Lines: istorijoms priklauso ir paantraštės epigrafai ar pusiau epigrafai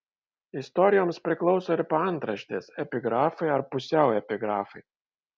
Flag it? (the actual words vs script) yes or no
no